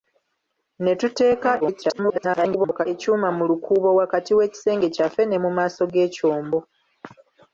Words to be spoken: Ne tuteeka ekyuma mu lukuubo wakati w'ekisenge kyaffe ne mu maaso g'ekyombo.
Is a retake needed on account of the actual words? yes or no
yes